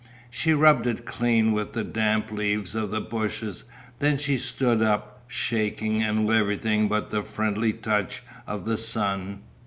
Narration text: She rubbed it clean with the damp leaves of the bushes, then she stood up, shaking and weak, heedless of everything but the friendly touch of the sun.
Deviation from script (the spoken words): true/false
true